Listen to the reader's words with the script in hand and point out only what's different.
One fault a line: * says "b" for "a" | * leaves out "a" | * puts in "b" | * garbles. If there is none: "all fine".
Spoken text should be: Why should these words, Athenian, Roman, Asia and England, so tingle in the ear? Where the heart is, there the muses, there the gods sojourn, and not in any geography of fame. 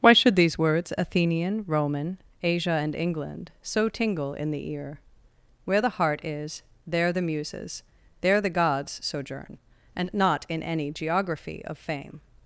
all fine